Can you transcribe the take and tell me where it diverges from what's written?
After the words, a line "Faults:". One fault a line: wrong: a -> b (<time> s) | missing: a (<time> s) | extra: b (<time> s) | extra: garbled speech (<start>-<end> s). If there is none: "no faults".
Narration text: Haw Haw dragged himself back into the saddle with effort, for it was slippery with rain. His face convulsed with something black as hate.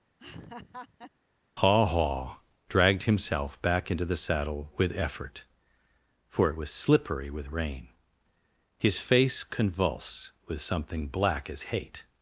Haw Haw dragged himself back into the saddle with effort, for it was slippery with rain. His face convulsed with something black as hate.
Faults:
no faults